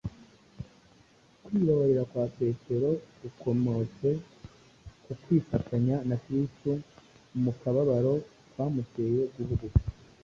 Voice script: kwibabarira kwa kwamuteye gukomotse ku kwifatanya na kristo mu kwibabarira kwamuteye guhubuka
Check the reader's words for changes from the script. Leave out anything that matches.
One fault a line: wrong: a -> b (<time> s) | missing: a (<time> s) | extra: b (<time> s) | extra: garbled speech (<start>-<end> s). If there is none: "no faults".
wrong: kwamuteye -> petero (2.4 s)
wrong: kwibabarira -> kababaro (7.6 s)